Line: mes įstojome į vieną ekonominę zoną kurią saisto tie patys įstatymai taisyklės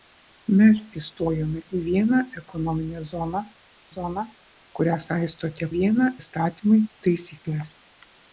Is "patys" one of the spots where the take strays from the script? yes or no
yes